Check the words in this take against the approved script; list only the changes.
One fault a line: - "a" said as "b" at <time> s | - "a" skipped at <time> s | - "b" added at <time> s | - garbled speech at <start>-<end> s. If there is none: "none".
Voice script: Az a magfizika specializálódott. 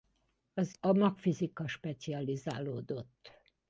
none